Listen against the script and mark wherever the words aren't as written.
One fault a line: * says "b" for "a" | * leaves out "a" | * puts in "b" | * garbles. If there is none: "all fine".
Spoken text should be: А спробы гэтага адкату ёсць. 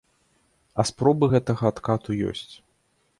all fine